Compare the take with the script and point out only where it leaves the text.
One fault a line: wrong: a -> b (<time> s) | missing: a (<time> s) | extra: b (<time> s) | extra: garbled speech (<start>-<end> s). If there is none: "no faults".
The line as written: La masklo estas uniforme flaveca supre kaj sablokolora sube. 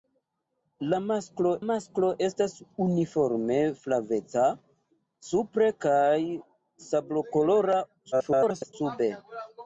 extra: masklo (1.7 s)
extra: garbled speech (8.1-8.7 s)